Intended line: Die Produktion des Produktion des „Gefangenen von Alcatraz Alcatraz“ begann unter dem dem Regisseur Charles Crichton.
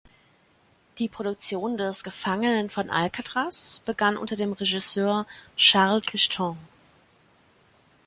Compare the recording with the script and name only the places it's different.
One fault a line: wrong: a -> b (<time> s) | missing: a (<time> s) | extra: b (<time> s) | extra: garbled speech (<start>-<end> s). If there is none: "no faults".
missing: Produktion des (2.0 s)
missing: Alcatraz (3.8 s)
missing: dem (4.5 s)